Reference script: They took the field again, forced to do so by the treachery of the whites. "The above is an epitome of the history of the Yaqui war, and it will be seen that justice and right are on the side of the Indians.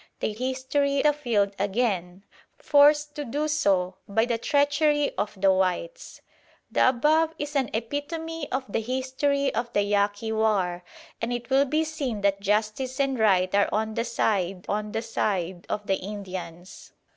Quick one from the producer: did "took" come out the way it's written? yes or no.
no